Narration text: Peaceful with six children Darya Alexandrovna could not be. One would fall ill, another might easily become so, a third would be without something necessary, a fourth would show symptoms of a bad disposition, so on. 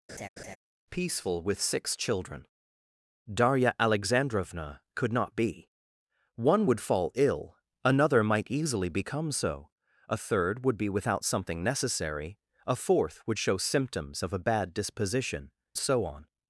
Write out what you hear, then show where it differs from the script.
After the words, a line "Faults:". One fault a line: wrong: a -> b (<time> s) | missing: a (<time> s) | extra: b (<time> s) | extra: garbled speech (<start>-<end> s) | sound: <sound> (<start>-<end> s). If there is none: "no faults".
Peaceful with six children Darya Alexandrovna could not be. One would fall ill, another might easily become so, a third would be without something necessary, a fourth would show symptoms of a bad disposition, so on.
Faults:
sound: laugh (0.1-0.6 s)